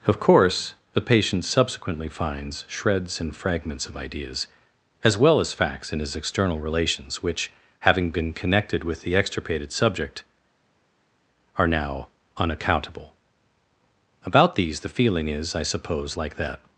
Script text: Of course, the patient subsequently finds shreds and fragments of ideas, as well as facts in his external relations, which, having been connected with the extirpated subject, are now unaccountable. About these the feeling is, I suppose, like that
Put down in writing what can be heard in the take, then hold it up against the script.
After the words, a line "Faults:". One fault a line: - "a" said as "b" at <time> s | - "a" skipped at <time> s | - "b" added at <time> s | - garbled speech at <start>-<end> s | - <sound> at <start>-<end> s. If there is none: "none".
Of course, the patient subsequently finds shreds and fragments of ideas, as well as facts in his external relations, which, having been connected with the extirpated subject, are now unaccountable. About these the feeling is, I suppose, like that
Faults:
none